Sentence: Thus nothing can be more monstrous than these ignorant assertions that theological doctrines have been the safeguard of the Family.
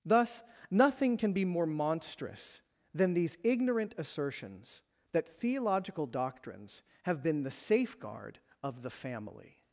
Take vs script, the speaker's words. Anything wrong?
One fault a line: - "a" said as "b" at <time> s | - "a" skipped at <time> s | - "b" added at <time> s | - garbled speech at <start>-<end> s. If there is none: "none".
none